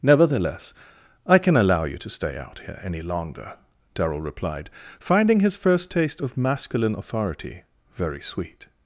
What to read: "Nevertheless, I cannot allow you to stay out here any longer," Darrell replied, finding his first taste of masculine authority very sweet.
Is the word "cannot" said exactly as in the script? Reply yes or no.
no